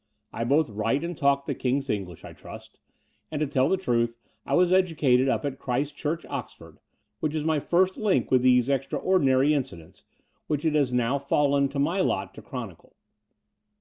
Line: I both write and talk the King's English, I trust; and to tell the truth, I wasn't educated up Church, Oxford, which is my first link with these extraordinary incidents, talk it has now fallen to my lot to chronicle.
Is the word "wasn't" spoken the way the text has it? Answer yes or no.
no